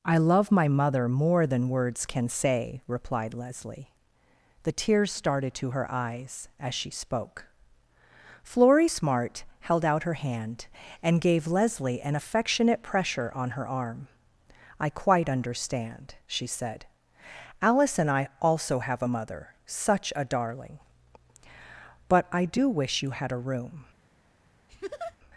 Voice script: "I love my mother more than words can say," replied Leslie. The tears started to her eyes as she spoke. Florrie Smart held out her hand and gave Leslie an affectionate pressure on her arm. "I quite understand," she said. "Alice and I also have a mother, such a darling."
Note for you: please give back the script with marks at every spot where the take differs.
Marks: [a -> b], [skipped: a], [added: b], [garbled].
"I love my mother more than words can say," replied Leslie. The tears started to her eyes as she spoke. Florrie Smart held out her hand and gave Leslie an affectionate pressure on her arm. "I quite understand," she said. "Alice and I also have a mother, such a darling." [added: But I do wish you had a room]